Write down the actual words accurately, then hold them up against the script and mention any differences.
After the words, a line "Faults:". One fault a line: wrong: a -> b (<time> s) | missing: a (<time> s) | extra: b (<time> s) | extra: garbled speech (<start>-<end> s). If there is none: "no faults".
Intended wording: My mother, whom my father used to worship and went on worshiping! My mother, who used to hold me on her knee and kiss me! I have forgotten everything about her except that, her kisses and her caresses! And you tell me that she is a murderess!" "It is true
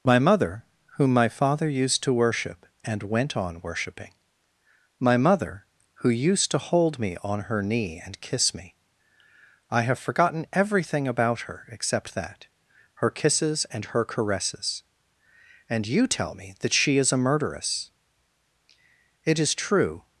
My mother, whom my father used to worship and went on worshiping! My mother, who used to hold me on her knee and kiss me! I have forgotten everything about her except that, her kisses and her caresses! And you tell me that she is a murderess!" "It is true
Faults:
no faults